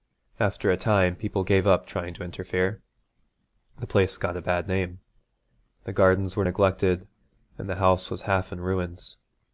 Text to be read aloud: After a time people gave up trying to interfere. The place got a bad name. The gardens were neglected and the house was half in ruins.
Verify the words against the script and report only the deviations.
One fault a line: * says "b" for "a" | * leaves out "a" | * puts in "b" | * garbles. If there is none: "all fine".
all fine